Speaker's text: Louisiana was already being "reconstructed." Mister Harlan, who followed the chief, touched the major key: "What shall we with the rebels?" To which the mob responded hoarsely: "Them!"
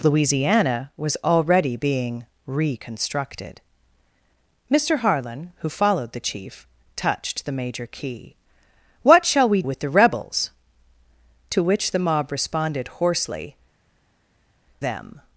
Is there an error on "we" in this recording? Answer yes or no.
no